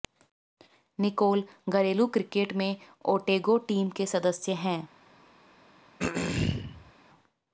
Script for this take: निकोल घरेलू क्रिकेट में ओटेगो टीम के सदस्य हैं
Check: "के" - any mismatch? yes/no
no